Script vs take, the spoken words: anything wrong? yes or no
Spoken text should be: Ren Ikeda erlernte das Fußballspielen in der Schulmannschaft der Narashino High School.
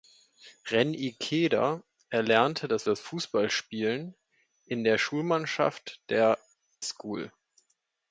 yes